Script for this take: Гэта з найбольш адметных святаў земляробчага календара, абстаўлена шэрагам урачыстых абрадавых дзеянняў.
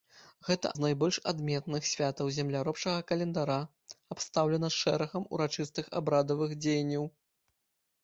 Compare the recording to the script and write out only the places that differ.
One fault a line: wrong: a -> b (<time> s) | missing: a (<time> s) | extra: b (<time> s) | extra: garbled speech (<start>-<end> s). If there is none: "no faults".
no faults